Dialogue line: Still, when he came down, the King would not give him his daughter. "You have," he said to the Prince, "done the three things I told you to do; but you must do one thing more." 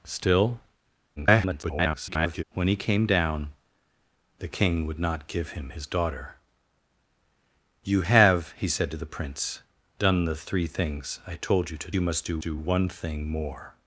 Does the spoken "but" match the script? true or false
false